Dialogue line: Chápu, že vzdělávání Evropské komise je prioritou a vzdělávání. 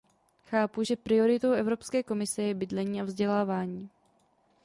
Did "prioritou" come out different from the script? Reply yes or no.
yes